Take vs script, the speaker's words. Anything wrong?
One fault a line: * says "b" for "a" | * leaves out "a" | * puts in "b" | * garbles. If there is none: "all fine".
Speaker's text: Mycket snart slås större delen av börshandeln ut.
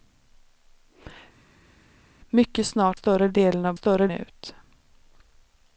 * leaves out "slås"
* says "större" for "börshandeln"